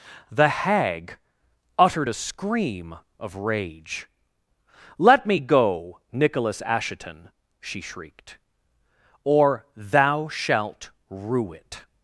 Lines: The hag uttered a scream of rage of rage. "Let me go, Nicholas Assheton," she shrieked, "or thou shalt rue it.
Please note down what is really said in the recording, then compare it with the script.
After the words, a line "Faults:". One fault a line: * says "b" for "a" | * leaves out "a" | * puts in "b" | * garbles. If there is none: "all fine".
The hag uttered a scream of rage. "Let me go, Nicholas Assheton," she shrieked, "or thou shalt rue it.
Faults:
* leaves out "of rage"